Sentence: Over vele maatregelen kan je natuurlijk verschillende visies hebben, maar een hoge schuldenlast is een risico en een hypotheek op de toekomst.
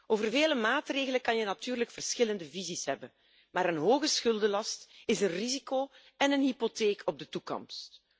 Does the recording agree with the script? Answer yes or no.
yes